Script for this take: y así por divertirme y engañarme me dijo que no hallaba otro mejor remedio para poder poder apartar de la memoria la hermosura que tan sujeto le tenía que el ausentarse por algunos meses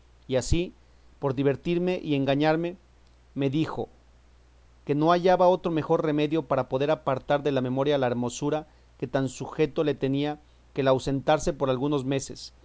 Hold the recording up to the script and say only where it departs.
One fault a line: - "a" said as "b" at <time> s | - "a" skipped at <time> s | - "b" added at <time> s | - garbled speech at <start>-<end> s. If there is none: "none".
- "poder" skipped at 6.9 s